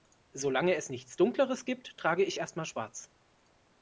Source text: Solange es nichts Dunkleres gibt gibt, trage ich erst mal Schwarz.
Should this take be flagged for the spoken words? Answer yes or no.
yes